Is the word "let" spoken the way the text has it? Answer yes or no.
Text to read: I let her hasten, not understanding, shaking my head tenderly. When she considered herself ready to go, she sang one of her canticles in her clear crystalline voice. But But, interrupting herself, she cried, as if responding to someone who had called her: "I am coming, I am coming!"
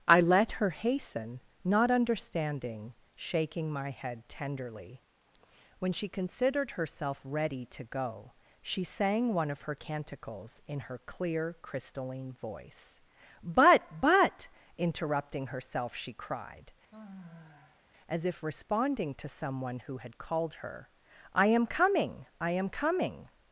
yes